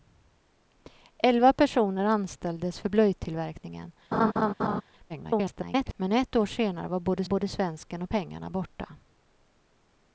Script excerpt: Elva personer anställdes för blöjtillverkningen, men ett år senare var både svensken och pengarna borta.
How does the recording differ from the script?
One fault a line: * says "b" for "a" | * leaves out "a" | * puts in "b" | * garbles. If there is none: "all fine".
* garbles
* puts in "både"